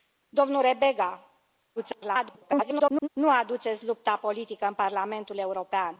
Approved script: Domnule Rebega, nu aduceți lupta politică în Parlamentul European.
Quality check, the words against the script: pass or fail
fail